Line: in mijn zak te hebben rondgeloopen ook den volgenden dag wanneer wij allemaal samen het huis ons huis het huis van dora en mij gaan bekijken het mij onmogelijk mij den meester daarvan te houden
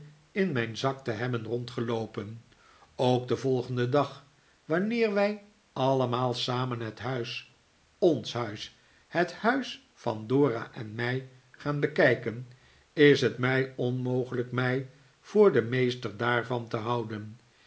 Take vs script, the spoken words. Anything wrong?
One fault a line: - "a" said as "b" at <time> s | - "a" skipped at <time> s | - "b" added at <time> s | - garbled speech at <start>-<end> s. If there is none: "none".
- "is" added at 12.9 s
- "voor" added at 15.2 s